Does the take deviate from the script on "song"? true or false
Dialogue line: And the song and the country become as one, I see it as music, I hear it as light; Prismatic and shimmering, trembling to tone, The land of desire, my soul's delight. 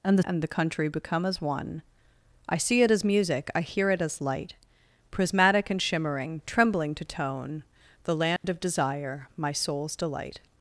true